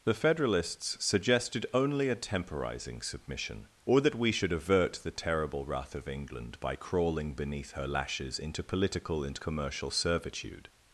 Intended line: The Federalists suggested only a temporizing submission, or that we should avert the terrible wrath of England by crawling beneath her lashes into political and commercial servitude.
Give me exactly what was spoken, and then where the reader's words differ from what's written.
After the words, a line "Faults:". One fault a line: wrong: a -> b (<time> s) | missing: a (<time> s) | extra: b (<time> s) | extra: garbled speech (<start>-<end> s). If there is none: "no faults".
The Federalists suggested only a temporizing submission, or that we should avert the terrible wrath of England by crawling beneath her lashes into political and commercial servitude.
Faults:
no faults